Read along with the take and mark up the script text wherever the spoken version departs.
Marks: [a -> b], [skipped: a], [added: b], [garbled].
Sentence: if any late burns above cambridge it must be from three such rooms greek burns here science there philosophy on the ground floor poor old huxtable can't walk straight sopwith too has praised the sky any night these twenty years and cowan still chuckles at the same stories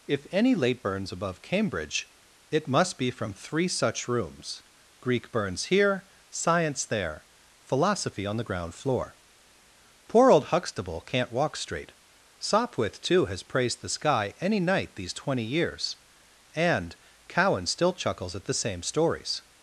if any late burns above cambridge it must be from three such rooms greek burns here science there philosophy on the ground floor poor old huxtable can't walk straight sopwith too has praised the sky any night these twenty years and cowan still chuckles at the same stories